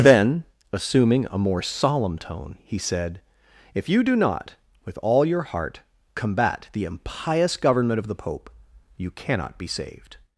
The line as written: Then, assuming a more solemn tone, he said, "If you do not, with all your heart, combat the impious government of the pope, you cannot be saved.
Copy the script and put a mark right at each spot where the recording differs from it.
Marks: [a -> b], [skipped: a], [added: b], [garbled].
Then, assuming a more solemn tone, he said, "If you do not, with all your heart, combat the impious government of the pope, you cannot be saved.